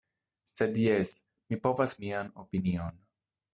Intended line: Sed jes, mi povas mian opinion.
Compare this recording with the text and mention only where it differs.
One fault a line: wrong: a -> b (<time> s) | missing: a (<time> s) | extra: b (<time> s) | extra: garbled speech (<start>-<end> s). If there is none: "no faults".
no faults